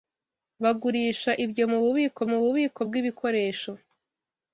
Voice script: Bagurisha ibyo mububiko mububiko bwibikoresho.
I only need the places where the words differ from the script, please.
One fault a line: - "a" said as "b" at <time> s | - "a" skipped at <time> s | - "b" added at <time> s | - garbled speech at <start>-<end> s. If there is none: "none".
none